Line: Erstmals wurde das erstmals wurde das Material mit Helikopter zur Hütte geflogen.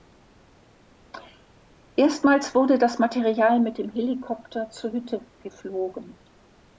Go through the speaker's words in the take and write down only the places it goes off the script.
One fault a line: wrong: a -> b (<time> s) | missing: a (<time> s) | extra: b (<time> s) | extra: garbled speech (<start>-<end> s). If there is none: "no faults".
missing: erstmals wurde das (3.0 s)
extra: dem (3.8 s)